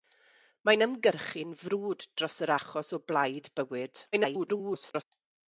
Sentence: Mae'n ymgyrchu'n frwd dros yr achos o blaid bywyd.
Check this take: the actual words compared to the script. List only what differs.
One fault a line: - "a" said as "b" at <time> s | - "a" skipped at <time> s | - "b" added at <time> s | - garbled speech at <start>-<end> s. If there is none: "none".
- garbled speech at 4.1-5.0 s